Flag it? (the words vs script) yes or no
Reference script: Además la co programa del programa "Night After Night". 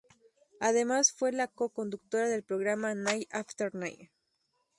yes